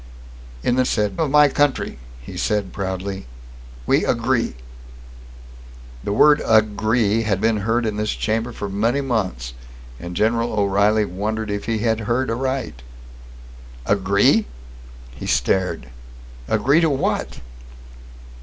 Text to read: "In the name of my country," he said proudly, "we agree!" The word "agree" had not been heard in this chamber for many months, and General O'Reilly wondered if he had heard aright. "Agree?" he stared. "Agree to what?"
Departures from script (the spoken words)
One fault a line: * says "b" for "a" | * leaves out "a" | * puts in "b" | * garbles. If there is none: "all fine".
* says "said" for "name"
* leaves out "not"